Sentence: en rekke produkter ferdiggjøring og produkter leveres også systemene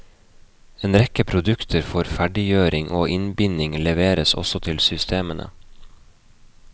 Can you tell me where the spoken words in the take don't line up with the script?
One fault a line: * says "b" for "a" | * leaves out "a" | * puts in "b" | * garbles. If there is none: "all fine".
* puts in "for"
* says "innbinding" for "produkter"
* puts in "til"